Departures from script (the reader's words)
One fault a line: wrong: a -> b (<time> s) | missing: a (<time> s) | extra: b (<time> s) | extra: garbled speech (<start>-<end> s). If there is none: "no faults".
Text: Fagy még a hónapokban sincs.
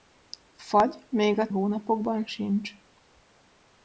no faults